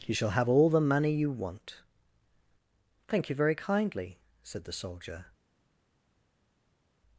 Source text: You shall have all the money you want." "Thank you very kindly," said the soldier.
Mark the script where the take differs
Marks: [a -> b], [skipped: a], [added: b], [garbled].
You shall have all the money you want." "Thank you very kindly," said the soldier.